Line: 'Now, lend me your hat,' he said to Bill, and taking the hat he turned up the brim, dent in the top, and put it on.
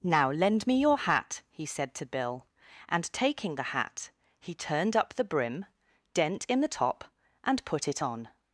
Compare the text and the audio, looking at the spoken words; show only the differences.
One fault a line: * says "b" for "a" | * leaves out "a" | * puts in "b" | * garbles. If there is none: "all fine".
all fine